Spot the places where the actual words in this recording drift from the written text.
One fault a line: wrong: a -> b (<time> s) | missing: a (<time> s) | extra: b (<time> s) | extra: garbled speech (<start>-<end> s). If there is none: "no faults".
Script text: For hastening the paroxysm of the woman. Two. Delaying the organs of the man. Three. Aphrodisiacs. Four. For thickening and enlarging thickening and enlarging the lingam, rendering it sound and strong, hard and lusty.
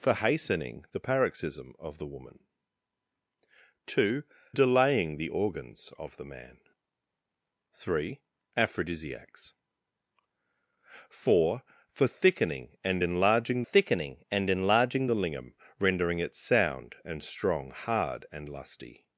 no faults